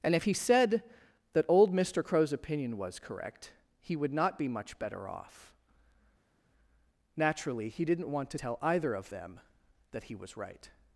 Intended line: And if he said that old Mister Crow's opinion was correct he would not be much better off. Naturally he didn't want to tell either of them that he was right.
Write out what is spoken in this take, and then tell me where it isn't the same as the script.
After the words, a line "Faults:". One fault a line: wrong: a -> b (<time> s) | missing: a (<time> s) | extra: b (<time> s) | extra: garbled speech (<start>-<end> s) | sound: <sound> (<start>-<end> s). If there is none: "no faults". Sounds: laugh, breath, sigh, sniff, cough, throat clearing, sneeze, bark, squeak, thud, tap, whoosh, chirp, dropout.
And if he said that old Mister Crow's opinion was correct he would not be much better off. Naturally he didn't want to tell either of them that he was right.
Faults:
no faults